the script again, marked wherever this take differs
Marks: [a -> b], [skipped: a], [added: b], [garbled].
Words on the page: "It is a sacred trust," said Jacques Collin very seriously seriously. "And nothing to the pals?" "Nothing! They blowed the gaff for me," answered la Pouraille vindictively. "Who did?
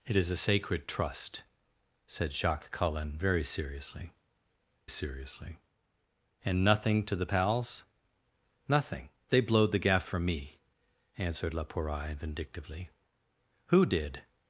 "It is a sacred trust," said Jacques Collin very seriously seriously. "And nothing to the pals?" "Nothing! They blowed the gaff for me," answered la Pouraille vindictively. "Who did?